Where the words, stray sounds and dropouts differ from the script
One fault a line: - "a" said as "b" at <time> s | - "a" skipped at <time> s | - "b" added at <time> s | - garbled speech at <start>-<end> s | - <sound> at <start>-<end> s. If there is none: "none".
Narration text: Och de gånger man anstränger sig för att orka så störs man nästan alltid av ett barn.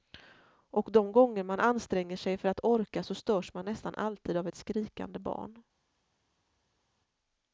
- "skrikande" added at 4.5 s